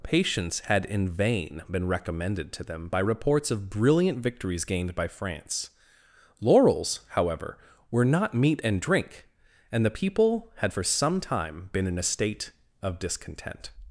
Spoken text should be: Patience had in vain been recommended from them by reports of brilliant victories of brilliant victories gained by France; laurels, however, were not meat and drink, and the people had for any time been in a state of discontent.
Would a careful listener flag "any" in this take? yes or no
yes